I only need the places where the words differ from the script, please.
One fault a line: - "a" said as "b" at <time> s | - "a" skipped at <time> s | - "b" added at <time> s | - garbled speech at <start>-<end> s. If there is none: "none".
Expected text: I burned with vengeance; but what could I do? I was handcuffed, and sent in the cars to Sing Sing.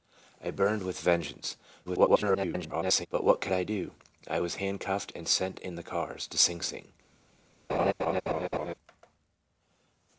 - garbled speech at 1.9-3.1 s